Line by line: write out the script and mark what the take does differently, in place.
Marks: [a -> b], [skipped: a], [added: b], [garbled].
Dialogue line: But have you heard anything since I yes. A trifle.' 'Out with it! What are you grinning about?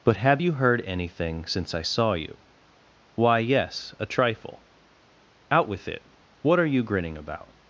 But have you heard anything since I [added: saw you Why] yes. A trifle.' 'Out with it! What are you grinning about?